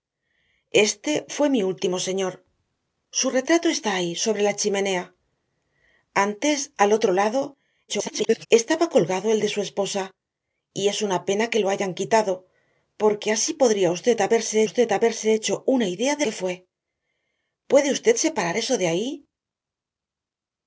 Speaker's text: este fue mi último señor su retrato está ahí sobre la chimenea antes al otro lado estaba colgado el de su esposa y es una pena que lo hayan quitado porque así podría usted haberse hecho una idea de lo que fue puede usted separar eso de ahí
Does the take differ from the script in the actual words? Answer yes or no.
yes